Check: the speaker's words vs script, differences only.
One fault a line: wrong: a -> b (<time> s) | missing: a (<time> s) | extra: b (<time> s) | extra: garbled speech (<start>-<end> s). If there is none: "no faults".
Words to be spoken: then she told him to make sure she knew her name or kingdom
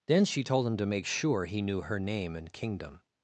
wrong: she -> he (1.5 s)
wrong: or -> and (2.4 s)